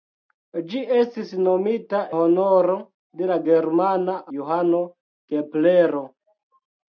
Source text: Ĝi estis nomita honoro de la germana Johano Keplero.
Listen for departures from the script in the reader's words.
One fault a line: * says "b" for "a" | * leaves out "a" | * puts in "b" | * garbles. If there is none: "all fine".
all fine